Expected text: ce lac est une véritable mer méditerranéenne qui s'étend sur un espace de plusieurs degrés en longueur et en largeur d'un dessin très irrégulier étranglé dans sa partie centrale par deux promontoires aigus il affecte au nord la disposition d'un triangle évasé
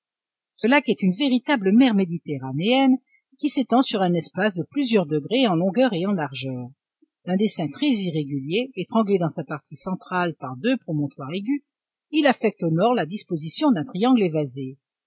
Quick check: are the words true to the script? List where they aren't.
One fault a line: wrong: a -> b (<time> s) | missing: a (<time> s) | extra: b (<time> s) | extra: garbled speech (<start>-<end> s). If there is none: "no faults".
no faults